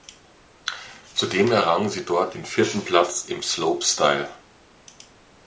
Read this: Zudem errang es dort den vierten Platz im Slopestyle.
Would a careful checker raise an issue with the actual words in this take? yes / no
yes